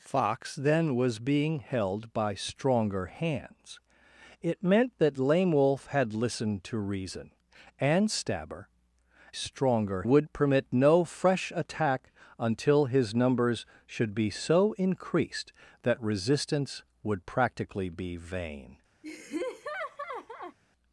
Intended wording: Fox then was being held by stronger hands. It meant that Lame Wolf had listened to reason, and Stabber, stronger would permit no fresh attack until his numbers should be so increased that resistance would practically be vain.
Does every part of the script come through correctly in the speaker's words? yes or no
yes